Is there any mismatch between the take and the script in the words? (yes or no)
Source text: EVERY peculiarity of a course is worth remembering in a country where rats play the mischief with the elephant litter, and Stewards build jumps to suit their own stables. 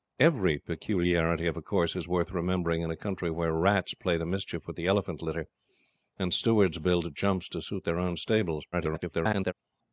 yes